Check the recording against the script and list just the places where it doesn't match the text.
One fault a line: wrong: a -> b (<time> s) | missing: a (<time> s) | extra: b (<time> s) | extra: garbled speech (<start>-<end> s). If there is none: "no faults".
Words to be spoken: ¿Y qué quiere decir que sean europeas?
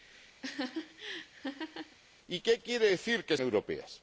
missing: sean (3.4 s)